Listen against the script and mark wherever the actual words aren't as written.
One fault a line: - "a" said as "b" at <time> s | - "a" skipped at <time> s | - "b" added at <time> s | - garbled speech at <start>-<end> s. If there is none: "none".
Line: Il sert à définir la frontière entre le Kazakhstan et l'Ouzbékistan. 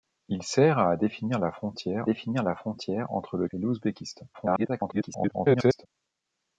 - "définir la frontière" added at 2.0 s
- "Kazakhstan" skipped at 3.5 s
- garbled speech at 4.3-5.9 s